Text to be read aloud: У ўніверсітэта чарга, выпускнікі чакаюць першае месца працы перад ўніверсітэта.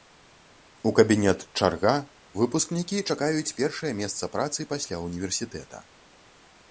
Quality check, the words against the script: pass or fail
fail